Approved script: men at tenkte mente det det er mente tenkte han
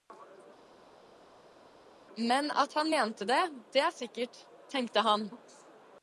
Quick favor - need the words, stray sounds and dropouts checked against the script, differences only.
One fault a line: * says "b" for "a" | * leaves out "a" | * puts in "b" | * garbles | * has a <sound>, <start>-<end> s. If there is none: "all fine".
* says "han" for "tenkte"
* says "sikkert" for "mente"